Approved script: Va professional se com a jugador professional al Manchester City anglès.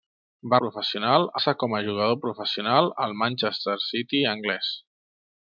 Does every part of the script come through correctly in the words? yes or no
yes